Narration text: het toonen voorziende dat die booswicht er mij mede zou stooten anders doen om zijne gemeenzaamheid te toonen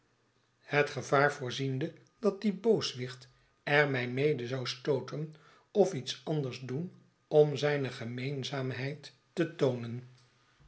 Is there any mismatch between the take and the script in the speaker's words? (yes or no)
yes